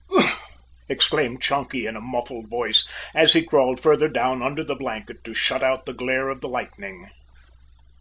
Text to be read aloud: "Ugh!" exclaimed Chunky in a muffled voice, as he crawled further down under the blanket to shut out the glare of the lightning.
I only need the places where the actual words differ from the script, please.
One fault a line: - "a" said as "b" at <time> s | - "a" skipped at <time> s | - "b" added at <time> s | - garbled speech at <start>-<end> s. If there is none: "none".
none